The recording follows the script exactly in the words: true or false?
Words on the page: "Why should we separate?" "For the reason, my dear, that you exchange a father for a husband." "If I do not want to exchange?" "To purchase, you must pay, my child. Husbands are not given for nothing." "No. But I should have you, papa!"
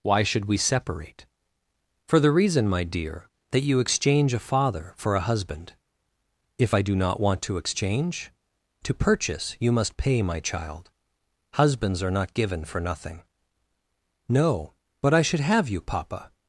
true